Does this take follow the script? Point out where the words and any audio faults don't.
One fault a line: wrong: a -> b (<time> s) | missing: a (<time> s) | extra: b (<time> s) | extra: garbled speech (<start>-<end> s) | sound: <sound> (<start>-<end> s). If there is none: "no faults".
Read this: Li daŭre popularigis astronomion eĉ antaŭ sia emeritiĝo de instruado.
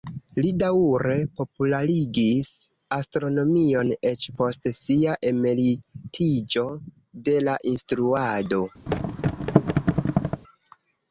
wrong: antaŭ -> post (4.4 s)
extra: la (7.5 s)
sound: thud (8.9-10.4 s)